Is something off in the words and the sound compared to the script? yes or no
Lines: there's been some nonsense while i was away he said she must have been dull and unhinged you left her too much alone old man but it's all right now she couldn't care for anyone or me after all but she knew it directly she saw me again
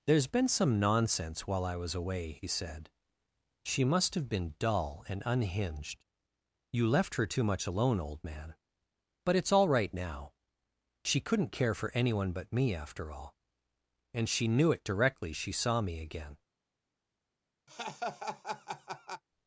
yes